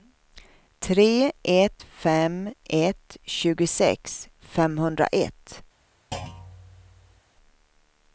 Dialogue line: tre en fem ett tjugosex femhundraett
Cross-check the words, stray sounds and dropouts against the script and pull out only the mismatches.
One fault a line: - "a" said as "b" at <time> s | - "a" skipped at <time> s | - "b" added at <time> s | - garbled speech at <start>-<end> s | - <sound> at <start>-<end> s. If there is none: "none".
- "en" said as "ett" at 1.4 s
- thud at 6.1-7.2 s